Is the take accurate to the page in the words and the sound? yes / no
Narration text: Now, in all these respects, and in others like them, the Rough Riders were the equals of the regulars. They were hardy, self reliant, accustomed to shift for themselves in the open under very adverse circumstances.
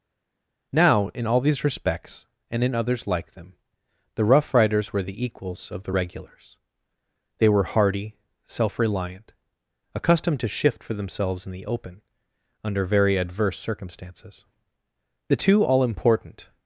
no